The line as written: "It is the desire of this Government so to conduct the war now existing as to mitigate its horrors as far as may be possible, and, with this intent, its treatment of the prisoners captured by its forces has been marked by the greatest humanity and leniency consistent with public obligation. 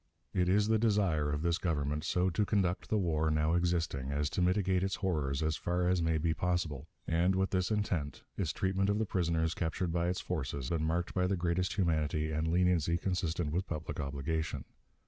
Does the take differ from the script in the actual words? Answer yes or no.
yes